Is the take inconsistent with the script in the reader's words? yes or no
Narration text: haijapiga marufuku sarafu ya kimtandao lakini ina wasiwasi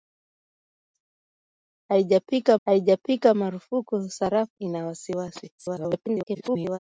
yes